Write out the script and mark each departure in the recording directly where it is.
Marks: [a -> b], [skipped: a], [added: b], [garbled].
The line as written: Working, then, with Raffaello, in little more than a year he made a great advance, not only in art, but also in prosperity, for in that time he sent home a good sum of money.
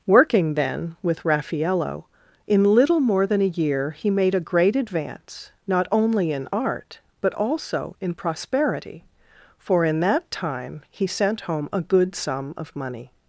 Working, then, with Raffaello, in little more than a year he made a great advance, not only in art, but also in prosperity, for in that time he sent home a good sum of money.